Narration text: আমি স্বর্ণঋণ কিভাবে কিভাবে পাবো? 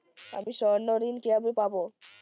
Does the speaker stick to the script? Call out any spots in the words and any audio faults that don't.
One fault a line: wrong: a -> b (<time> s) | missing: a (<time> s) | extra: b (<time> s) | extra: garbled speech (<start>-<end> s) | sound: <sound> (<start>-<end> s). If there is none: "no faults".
sound: dropout (0.4-0.5 s)
missing: কিভাবে (1.5 s)